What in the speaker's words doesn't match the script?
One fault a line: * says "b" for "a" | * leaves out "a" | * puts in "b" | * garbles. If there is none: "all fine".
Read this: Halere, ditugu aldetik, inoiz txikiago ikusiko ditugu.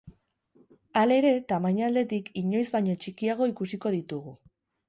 * says "tamaina" for "ditugu"
* puts in "baino"